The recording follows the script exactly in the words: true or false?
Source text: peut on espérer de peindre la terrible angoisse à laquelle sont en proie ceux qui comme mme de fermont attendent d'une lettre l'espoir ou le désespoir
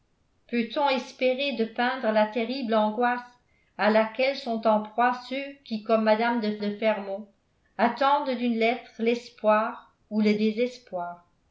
false